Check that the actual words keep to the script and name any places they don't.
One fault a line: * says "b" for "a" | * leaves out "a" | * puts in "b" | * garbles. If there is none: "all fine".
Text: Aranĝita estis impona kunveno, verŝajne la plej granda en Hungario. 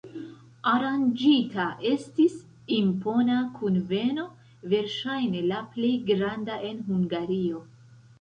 all fine